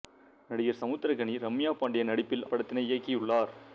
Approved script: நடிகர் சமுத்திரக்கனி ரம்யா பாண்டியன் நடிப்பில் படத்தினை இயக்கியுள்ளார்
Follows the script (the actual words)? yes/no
yes